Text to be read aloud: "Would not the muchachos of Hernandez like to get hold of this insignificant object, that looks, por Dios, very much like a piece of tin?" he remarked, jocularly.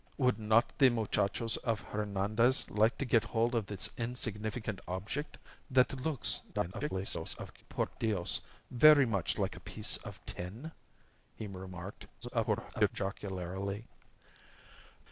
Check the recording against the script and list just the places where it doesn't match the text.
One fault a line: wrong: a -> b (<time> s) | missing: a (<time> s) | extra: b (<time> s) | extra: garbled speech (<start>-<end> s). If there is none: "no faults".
extra: garbled speech (6.5-7.6 s)
extra: garbled speech (12.2-12.9 s)